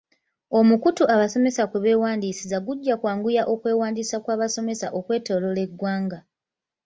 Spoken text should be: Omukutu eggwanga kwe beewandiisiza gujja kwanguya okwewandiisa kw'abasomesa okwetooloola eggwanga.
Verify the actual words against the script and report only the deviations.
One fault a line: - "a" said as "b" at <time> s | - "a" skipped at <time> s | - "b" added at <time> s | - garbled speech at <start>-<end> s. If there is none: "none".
- "eggwanga" said as "abasomesa" at 1.1 s